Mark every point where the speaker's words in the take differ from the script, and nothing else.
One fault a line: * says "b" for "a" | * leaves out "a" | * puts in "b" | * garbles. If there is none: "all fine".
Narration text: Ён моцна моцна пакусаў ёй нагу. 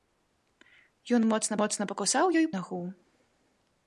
all fine